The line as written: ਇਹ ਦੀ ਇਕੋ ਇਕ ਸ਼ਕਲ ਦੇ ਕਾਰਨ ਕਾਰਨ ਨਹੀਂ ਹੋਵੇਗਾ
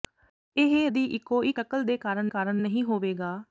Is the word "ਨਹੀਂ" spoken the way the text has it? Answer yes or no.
yes